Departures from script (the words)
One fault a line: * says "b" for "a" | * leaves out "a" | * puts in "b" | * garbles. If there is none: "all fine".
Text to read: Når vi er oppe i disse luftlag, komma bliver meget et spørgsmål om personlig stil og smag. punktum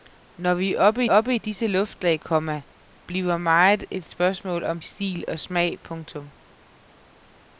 * puts in "oppe"
* leaves out "personlig"